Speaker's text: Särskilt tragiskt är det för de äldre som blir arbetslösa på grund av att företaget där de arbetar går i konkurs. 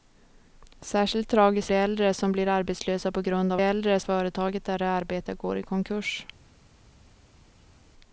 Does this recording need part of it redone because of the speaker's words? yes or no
yes